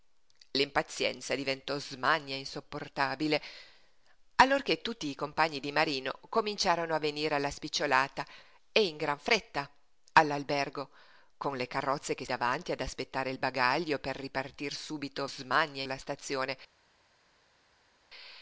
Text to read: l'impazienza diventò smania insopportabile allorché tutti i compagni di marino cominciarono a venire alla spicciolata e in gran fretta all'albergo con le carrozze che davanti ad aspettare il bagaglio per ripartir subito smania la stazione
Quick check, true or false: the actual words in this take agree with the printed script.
true